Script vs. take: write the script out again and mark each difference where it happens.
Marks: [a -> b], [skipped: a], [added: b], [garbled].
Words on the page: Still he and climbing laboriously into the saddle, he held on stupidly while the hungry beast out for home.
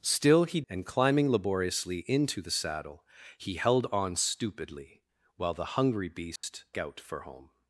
Still he and climbing laboriously into the saddle, he held on stupidly while the hungry beast out for home.